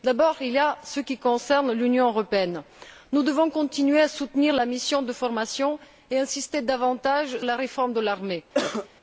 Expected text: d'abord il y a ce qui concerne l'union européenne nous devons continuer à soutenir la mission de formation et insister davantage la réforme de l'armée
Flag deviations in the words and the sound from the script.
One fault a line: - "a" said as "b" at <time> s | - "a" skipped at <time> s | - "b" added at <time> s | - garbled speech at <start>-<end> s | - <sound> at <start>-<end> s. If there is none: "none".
- cough at 8.5-8.9 s